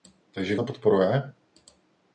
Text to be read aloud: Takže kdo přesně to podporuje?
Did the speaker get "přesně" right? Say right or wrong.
wrong